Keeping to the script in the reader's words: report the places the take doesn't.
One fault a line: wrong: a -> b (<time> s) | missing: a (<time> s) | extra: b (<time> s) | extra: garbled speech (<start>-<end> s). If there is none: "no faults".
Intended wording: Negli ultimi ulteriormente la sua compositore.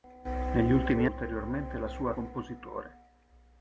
no faults